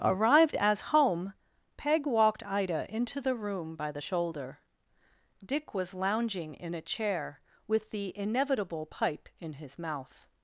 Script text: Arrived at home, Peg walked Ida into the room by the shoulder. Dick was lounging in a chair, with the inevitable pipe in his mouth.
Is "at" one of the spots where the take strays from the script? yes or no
yes